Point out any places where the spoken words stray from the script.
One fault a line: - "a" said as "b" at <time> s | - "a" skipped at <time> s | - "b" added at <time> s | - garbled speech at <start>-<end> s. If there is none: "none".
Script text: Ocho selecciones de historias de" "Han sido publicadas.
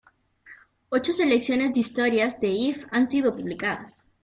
- "If" added at 2.5 s